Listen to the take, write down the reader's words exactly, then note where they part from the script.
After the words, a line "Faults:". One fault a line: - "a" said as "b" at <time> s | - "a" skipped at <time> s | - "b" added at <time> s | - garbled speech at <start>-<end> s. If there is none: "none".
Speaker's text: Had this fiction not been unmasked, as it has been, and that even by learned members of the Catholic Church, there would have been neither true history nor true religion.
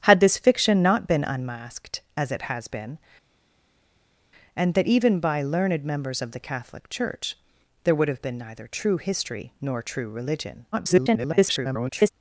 Had this fiction not been unmasked, as it has been, and that even by learned members of the Catholic Church, there would have been neither true history nor true religion. [garbled]
Faults:
- garbled speech at 10.7-12.1 s